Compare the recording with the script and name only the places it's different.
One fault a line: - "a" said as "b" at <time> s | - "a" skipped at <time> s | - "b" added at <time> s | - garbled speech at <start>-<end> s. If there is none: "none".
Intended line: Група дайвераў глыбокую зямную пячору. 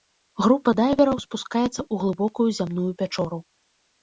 - "спускаецца ў" added at 1.2 s